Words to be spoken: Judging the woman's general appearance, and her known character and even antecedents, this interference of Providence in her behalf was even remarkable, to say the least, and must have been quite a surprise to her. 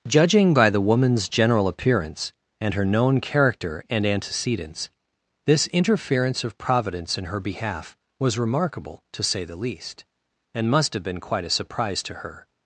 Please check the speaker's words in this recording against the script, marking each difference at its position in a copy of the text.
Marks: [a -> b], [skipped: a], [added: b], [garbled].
Judging [added: by] the woman's general appearance, and her known character and [skipped: even] antecedents, this interference of Providence in her behalf was [skipped: even] remarkable, to say the least, and must have been quite a surprise to her.